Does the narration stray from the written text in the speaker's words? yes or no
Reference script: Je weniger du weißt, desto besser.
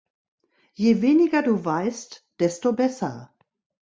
no